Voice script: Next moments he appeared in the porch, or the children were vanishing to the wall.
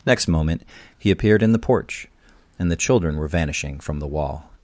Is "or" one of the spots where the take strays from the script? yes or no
yes